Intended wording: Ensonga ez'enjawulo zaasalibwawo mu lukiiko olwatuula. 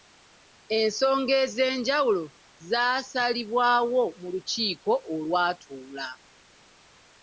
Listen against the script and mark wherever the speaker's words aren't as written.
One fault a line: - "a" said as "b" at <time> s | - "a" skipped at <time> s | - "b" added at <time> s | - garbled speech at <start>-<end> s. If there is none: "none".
none